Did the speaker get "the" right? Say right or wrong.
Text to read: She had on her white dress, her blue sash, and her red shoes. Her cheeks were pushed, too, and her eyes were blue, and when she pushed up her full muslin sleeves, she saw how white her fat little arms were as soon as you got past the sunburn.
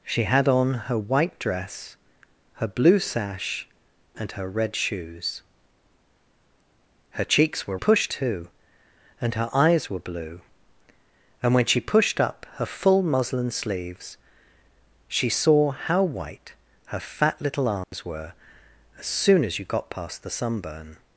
right